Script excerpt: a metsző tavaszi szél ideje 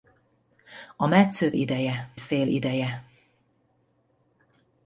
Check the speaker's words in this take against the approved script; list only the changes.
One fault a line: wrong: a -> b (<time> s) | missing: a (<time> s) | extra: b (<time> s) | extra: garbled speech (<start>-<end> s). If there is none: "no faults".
wrong: tavaszi -> ideje (1.5 s)